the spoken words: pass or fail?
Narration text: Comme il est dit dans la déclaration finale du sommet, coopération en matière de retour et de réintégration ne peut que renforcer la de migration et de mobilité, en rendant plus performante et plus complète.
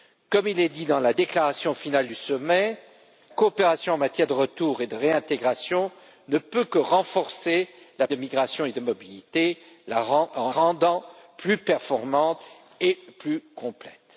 pass